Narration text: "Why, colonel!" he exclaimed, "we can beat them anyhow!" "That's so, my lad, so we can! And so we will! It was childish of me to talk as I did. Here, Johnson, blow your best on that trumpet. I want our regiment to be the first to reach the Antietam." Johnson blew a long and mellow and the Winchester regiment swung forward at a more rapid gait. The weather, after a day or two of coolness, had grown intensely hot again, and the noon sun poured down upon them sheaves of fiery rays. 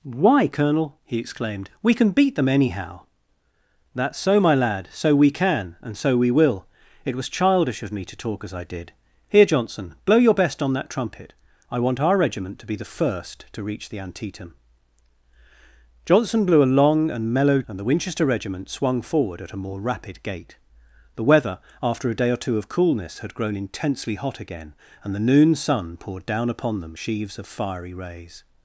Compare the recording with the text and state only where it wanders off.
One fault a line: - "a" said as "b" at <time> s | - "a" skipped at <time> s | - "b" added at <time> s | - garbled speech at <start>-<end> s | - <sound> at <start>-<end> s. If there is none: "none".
none